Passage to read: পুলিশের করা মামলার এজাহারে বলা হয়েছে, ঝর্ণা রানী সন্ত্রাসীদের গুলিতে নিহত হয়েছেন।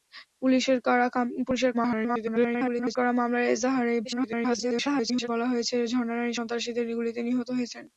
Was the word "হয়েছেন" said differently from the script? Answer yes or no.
no